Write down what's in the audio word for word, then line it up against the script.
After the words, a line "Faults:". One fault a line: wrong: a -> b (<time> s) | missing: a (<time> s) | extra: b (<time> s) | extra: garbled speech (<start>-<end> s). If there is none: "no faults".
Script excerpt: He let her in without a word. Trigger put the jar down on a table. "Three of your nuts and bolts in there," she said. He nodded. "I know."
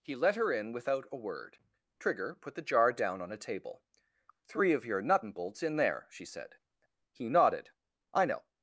He let her in without a word. Trigger put the jar down on a table. "Three of your nut and bolts in there," she said. He nodded. "I know."
Faults:
wrong: nuts -> nut (5.0 s)